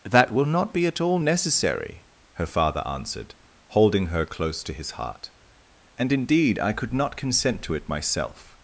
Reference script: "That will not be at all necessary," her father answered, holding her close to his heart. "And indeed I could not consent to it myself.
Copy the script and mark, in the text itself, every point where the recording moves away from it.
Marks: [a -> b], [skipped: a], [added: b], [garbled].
"That will not be at all necessary," her father answered, holding her close to his heart. "And indeed I could not consent to it myself.